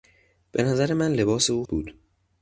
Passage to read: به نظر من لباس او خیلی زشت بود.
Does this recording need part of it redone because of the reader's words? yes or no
yes